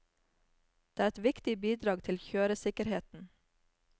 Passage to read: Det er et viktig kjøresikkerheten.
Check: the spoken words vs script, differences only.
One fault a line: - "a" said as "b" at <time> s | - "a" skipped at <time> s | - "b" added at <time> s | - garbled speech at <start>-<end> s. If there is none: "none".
- "bidrag til" added at 1.6 s